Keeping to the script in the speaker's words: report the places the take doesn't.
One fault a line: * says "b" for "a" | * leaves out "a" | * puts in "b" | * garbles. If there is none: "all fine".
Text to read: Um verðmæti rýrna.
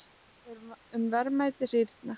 all fine